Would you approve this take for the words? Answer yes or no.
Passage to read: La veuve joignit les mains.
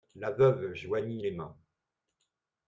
yes